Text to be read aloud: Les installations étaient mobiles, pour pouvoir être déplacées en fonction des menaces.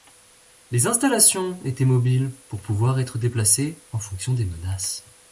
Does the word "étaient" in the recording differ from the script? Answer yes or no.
no